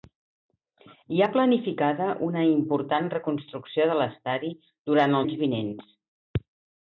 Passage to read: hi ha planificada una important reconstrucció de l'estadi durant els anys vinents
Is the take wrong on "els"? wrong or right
wrong